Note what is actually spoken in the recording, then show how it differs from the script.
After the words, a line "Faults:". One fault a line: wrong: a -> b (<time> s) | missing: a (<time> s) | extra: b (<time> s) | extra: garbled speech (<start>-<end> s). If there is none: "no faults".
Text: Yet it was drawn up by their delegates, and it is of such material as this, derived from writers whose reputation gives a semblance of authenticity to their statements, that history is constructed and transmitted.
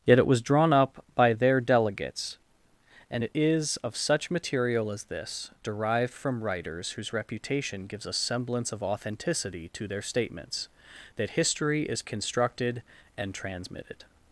Yet it was drawn up by their delegates, and it is of such material as this, derived from writers whose reputation gives a semblance of authenticity to their statements, that history is constructed and transmitted.
Faults:
no faults